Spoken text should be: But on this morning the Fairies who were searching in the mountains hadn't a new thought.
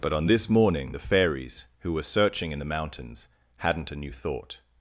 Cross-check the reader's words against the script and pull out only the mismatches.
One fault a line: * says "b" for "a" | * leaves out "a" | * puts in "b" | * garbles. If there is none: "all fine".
all fine